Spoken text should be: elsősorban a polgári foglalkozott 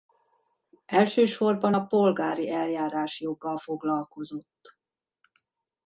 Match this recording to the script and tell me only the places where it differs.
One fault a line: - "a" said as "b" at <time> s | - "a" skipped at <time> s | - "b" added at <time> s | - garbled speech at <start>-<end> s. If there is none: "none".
- "eljárásjoggal" added at 2.5 s